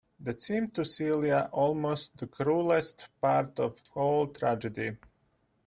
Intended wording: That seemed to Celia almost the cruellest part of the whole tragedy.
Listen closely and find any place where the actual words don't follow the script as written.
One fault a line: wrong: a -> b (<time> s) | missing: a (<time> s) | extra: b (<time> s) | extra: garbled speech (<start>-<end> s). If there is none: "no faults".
no faults